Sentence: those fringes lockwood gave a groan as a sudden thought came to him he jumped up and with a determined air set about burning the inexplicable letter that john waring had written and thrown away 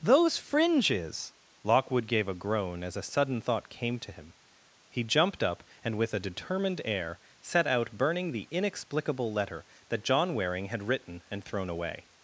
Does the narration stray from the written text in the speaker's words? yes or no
yes